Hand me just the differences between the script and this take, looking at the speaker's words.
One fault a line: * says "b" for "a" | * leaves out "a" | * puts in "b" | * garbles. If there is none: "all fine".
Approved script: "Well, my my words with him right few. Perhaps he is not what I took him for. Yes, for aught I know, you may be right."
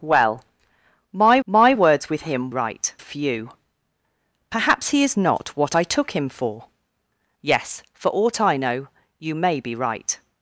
all fine